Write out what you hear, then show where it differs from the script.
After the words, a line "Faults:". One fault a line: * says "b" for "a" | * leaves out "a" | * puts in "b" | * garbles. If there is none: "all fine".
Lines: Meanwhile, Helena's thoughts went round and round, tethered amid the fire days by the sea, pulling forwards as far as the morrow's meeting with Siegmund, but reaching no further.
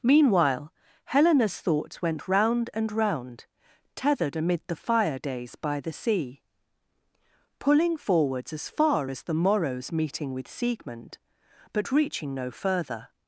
Meanwhile, Helena's thoughts went round and round, tethered amid the fire days by the sea, pulling forwards as far as the morrow's meeting with Siegmund, but reaching no further.
Faults:
all fine